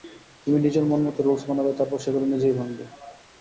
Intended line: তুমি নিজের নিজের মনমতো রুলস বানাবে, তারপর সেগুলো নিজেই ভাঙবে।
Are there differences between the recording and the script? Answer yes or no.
yes